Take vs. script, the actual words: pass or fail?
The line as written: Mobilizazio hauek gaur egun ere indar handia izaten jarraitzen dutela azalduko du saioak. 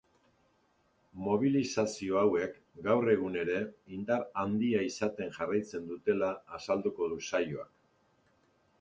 pass